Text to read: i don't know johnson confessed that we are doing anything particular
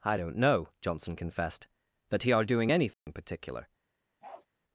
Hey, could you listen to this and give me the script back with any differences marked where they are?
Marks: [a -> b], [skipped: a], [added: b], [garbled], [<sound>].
i don't know johnson confessed that [we -> he] are doing anything [dropout] particular [bark]